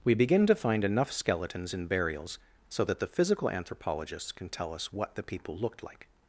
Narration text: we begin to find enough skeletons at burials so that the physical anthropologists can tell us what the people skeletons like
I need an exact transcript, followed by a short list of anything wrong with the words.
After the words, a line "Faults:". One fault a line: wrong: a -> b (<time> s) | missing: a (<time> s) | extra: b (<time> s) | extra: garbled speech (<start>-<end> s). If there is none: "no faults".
we begin to find enough skeletons in burials so that the physical anthropologists can tell us what the people looked like
Faults:
wrong: at -> in (1.7 s)
wrong: skeletons -> looked (5.6 s)